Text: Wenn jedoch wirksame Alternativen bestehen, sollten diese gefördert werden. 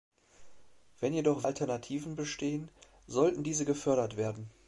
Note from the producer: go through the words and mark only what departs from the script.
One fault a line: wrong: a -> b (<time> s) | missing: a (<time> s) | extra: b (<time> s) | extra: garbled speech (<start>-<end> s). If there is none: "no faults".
missing: wirksame (1.4 s)